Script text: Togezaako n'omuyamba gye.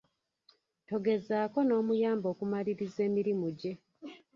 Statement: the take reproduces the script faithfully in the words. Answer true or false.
false